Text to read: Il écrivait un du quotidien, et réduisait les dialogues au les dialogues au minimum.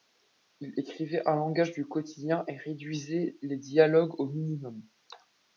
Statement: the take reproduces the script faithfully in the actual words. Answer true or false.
false